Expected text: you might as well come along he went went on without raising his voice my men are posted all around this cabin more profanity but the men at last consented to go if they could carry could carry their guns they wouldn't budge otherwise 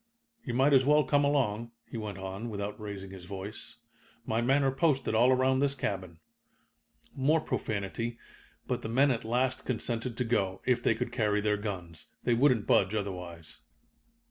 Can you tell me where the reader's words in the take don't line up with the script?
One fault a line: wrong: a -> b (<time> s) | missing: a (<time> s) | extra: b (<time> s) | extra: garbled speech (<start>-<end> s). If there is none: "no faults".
missing: went (2.2 s)
missing: could carry (11.4 s)